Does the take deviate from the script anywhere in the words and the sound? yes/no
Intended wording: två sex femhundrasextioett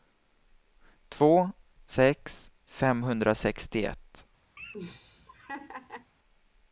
yes